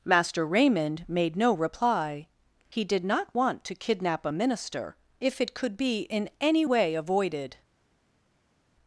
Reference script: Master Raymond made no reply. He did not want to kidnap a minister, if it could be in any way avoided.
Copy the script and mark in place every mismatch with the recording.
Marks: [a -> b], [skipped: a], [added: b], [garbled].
Master Raymond made no reply. He did not want to kidnap a minister, if it could be in any way avoided.